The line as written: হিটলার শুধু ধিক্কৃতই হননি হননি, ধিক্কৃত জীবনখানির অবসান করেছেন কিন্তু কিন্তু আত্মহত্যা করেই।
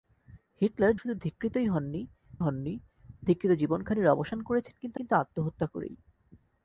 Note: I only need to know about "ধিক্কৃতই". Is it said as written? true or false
true